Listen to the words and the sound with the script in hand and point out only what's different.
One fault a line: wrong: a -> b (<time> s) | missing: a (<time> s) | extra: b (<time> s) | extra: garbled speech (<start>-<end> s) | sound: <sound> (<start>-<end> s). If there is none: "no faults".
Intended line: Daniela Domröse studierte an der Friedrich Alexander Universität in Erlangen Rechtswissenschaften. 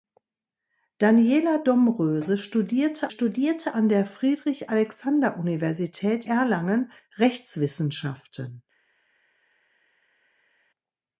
extra: studierte (3.1 s)
missing: in (6.2 s)